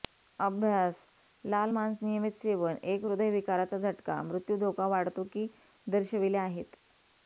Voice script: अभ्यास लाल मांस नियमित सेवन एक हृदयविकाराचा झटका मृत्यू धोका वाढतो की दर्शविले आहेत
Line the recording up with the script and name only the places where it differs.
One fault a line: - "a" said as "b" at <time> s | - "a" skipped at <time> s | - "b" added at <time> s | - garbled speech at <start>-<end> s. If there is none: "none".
none